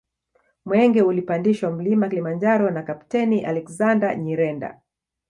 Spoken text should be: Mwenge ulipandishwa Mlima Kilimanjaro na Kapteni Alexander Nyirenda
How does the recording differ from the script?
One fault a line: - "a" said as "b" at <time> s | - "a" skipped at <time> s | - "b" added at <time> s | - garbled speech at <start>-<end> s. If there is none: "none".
none